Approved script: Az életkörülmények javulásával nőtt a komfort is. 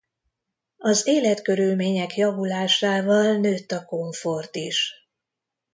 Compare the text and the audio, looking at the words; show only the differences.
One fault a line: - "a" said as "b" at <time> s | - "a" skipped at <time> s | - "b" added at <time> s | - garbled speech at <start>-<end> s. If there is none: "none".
none